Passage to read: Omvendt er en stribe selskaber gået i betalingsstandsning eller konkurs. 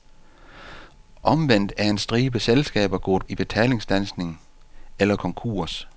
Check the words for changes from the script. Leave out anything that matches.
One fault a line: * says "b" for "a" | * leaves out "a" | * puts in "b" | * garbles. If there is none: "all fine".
all fine